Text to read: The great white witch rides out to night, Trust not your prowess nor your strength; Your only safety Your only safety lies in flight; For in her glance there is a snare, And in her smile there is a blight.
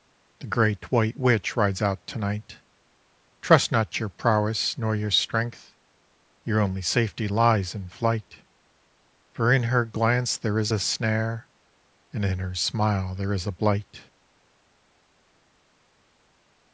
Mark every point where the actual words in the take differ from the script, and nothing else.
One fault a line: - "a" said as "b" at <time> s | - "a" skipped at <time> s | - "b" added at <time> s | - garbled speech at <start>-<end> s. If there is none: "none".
- "Your only safety" skipped at 7.3 s